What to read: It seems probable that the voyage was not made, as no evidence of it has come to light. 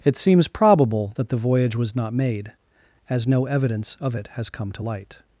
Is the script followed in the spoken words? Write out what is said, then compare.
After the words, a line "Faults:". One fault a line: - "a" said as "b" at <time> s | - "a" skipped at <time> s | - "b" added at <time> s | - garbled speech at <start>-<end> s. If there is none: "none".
It seems probable that the voyage was not made, as no evidence of it has come to light.
Faults:
none